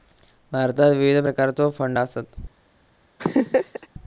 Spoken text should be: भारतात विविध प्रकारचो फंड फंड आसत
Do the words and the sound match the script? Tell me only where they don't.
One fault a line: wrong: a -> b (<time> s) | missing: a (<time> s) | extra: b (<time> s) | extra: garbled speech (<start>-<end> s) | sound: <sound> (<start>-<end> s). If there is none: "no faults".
missing: फंड (2.0 s)
sound: laugh (3.2-3.9 s)